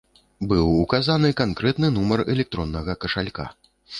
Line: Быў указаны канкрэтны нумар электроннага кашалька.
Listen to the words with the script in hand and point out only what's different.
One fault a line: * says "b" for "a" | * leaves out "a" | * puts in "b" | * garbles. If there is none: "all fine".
all fine